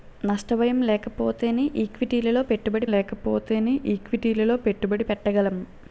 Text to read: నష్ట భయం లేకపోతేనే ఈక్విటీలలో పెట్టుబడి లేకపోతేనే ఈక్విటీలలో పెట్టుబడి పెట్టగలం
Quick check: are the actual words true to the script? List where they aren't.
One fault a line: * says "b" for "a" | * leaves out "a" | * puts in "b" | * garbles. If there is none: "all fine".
all fine